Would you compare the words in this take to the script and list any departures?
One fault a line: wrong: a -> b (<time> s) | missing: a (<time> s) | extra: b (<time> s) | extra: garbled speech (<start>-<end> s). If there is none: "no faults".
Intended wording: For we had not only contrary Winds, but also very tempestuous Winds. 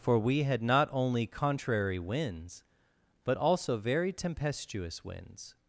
no faults